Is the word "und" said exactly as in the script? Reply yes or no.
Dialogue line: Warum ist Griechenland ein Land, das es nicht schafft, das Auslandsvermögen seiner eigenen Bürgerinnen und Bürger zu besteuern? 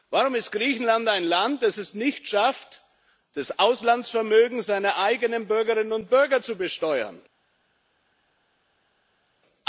yes